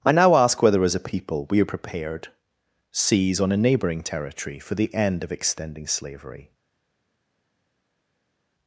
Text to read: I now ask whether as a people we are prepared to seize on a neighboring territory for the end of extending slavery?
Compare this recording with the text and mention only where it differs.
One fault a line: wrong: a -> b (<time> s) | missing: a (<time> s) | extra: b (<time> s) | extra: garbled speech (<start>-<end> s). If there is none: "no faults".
missing: to (2.3 s)